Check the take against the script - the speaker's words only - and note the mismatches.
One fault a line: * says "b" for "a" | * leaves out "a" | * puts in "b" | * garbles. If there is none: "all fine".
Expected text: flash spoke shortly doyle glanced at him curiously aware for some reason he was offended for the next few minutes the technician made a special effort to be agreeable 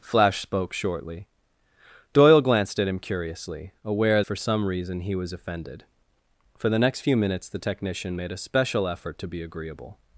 all fine